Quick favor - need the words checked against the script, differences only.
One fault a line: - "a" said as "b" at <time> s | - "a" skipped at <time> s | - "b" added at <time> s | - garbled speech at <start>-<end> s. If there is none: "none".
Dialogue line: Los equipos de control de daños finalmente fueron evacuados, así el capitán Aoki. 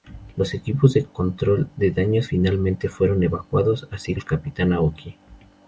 none